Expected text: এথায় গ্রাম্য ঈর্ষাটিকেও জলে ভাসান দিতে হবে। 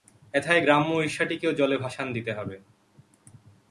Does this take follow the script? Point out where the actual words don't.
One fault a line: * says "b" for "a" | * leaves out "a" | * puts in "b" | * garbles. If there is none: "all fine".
all fine